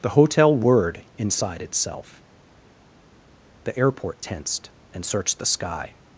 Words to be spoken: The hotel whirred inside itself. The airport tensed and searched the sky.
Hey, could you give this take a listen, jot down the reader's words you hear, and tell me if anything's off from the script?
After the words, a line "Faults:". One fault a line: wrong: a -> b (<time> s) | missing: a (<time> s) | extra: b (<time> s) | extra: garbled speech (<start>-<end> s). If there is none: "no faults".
The hotel whirred inside itself. The airport tensed and searched the sky.
Faults:
no faults